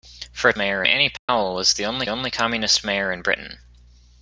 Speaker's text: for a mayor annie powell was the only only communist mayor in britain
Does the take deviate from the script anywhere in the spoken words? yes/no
no